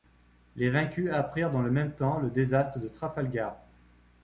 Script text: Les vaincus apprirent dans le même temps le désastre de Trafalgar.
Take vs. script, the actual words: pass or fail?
pass